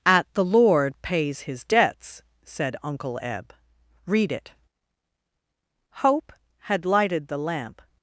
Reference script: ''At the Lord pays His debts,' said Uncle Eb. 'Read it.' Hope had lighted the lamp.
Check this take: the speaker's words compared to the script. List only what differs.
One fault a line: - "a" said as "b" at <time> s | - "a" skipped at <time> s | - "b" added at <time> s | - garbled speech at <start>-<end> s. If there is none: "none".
none